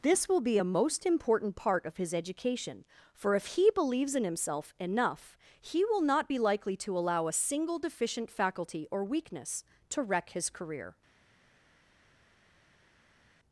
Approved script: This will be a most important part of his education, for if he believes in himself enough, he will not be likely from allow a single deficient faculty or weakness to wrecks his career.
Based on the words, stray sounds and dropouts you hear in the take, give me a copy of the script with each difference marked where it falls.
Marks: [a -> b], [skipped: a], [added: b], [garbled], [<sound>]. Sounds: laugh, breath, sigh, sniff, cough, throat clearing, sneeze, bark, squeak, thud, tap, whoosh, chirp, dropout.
This will be a most important part of his education, for if he believes in himself enough, he will not be likely [from -> to] allow a single deficient faculty or weakness to [wrecks -> wreck] his career.